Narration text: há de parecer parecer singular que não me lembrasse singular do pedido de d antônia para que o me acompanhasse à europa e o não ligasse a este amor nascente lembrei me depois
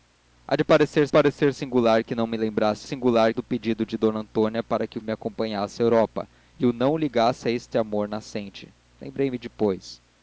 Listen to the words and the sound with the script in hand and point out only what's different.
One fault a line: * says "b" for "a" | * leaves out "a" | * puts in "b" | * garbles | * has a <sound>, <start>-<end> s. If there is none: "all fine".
all fine